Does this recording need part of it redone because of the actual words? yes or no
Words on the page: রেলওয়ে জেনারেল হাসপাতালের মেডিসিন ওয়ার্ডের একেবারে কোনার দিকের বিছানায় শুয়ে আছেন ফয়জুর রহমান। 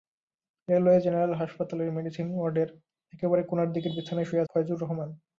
yes